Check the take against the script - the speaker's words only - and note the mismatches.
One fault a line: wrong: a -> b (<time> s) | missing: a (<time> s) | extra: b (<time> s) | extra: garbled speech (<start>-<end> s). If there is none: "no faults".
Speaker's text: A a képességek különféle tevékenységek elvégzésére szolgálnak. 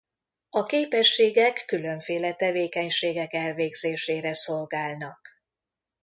missing: a (0.6 s)